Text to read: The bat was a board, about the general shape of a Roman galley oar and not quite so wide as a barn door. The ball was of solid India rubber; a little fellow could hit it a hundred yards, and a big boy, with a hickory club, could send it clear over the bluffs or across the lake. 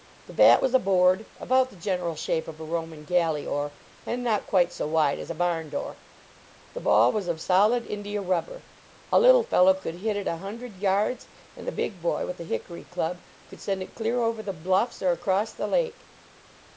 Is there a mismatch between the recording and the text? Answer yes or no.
no